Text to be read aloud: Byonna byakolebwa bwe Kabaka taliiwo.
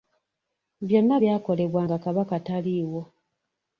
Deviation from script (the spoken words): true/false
true